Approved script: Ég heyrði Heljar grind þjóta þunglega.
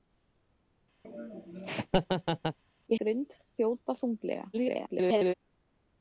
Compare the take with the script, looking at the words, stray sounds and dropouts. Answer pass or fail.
fail